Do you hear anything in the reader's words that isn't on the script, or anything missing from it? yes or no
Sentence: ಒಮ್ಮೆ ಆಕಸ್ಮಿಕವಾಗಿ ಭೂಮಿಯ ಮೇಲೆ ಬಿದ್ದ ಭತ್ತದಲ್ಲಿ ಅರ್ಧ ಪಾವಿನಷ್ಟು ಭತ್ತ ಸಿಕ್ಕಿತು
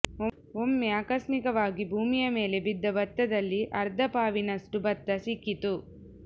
no